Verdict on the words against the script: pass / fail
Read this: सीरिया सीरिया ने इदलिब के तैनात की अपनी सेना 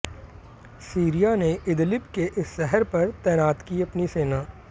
fail